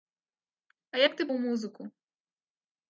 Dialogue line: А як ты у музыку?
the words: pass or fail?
pass